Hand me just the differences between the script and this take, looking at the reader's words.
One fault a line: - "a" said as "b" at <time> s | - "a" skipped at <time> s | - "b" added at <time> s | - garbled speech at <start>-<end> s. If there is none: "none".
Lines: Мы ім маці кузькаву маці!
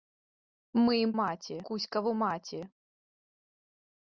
none